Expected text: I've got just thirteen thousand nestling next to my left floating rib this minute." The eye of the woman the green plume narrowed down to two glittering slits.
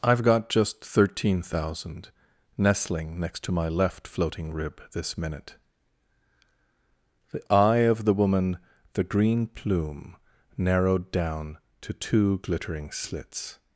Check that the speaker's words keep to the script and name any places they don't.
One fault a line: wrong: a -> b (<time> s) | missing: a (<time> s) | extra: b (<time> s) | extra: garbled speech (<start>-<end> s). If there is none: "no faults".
no faults